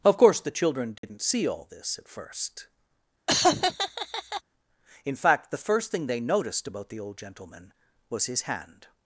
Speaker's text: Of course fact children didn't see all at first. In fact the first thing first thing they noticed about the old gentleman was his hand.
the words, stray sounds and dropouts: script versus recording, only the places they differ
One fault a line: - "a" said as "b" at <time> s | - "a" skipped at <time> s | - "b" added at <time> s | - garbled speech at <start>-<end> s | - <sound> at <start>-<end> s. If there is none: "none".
- "fact" said as "the" at 0.4 s
- dropout at 1.0-1.0 s
- "this" added at 1.7 s
- laugh at 3.3-4.4 s
- "first thing" skipped at 6.1 s